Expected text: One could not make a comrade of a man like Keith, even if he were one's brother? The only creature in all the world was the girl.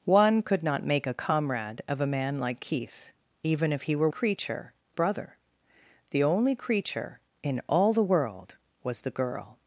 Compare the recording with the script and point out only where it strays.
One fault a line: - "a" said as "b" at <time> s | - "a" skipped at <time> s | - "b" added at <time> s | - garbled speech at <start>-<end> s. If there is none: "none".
- "one's" said as "creature" at 4.1 s